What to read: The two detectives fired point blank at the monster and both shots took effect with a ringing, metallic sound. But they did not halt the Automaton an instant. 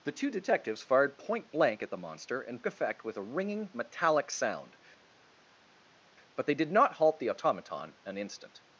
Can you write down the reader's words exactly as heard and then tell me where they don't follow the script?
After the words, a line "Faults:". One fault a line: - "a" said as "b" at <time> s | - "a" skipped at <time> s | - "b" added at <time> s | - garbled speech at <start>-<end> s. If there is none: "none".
The two detectives fired point blank at the monster and effect with a ringing, metallic sound. But they did not halt the Automaton an instant.
Faults:
- "both shots took" skipped at 2.6 s